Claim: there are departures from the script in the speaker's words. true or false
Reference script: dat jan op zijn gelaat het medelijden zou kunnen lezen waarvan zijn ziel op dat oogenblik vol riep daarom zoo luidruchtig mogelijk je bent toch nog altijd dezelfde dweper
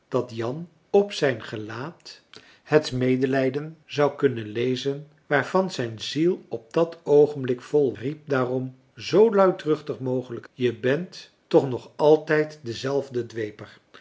false